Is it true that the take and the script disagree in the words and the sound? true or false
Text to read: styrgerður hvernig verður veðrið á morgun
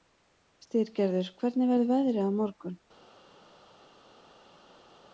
false